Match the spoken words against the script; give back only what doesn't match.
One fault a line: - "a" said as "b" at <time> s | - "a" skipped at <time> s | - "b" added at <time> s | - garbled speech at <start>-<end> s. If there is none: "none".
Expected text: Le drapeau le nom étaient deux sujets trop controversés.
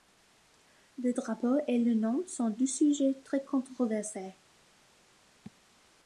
- "et" added at 1.7 s
- "étaient" said as "sont" at 2.3 s
- "trop" said as "très" at 3.2 s